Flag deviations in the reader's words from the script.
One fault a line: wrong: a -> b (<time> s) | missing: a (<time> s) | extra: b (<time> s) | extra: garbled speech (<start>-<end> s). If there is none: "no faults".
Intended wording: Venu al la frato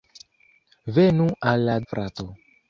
no faults